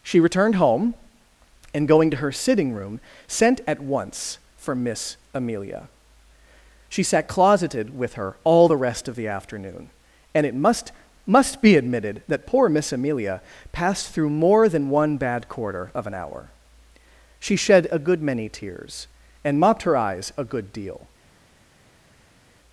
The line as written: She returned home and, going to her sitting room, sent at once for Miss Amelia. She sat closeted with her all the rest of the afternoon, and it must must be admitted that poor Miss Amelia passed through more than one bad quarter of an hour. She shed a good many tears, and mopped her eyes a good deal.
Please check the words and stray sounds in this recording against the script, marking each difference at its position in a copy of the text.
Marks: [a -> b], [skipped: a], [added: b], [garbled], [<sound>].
She returned home and, going to her sitting room, sent at once for Miss Amelia. She sat closeted with her all the rest of the afternoon, and it must must be admitted that poor Miss Amelia passed through more than one bad quarter of an hour. She shed a good many tears, and mopped her eyes a good deal.